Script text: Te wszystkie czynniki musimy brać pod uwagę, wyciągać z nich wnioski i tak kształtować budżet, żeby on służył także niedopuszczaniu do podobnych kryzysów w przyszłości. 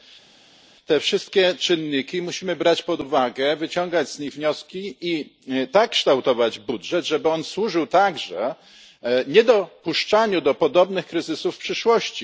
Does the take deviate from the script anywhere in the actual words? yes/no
no